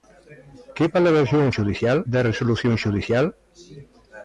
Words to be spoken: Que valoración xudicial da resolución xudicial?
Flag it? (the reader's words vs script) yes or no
no